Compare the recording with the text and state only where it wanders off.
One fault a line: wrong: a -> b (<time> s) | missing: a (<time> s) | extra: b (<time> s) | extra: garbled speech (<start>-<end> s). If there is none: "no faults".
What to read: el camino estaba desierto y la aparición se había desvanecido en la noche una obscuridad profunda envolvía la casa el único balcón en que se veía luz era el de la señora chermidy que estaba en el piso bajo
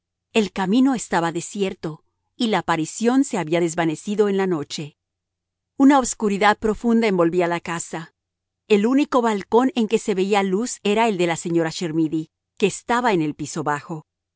no faults